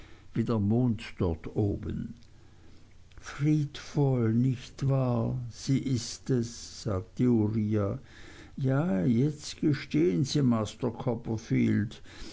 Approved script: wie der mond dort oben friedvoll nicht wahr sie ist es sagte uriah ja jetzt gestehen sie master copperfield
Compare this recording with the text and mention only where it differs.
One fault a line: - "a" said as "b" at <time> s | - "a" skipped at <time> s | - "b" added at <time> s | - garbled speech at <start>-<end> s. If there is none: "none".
none